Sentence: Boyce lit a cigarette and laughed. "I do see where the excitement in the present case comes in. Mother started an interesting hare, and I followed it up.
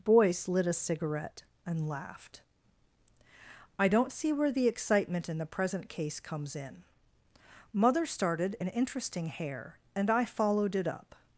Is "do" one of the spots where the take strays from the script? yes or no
yes